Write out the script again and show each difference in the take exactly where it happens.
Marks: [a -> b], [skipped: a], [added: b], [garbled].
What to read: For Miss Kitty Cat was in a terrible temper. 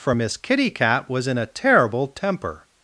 For Miss Kitty Cat was in a terrible temper.